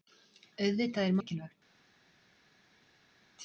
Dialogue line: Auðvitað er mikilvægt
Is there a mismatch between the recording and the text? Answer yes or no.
no